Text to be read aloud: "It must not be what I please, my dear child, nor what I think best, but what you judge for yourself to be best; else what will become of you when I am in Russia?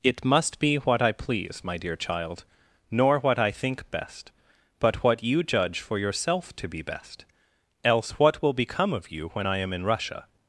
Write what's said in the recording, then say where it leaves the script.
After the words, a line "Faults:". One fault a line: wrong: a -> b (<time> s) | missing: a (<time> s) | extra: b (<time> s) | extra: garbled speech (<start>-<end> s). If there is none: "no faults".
"It must be what I please, my dear child, nor what I think best, but what you judge for yourself to be best; else what will become of you when I am in Russia?
Faults:
missing: not (0.6 s)